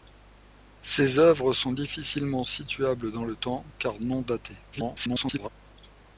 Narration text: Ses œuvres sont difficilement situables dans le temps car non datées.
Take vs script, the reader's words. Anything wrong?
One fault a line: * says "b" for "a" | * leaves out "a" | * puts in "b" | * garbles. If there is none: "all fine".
* garbles